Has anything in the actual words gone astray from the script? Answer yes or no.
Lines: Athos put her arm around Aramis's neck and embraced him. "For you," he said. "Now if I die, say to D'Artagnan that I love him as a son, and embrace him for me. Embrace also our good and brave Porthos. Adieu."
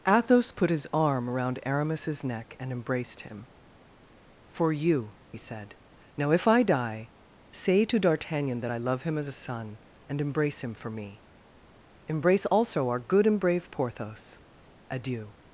yes